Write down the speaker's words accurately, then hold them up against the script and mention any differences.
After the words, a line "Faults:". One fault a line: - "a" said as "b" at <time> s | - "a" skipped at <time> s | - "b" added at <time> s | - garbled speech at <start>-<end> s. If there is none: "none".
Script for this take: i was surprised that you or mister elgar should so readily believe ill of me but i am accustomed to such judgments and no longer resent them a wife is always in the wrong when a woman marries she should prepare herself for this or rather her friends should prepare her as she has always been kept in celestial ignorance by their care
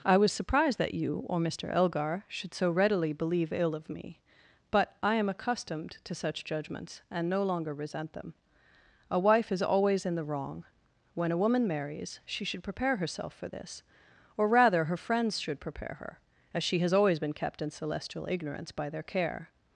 i was surprised that you or mister elgar should so readily believe ill of me but i am accustomed to such judgments and no longer resent them a wife is always in the wrong when a woman marries she should prepare herself for this or rather her friends should prepare her as she has always been kept in celestial ignorance by their care
Faults:
none